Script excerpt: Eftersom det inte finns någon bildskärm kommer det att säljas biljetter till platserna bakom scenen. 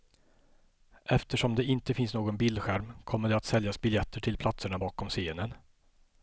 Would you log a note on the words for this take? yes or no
no